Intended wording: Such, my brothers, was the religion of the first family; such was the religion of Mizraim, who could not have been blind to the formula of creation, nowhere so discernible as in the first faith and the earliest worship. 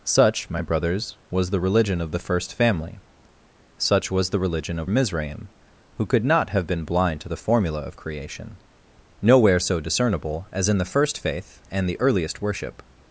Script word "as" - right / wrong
right